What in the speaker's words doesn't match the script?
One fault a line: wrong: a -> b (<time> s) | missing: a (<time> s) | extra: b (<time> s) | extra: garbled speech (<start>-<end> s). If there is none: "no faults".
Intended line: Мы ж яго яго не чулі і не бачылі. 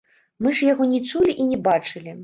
missing: яго (0.9 s)